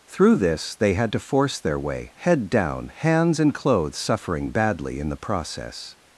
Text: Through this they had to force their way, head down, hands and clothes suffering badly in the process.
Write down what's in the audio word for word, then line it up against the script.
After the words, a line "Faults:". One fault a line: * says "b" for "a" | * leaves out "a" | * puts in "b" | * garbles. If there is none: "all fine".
Through this they had to force their way, head down, hands and clothes suffering badly in the process.
Faults:
all fine